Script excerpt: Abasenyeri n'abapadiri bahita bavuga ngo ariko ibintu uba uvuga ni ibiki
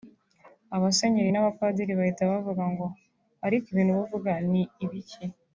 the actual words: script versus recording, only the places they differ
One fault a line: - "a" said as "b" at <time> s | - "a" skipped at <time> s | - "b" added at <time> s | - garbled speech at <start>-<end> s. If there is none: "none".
none